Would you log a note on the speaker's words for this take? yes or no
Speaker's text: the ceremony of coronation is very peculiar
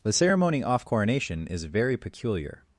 yes